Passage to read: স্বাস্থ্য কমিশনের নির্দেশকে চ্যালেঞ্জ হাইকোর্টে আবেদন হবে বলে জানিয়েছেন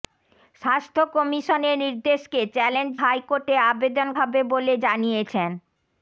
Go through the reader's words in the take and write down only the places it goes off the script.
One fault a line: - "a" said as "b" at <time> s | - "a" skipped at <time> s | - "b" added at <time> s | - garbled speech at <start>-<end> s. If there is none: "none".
none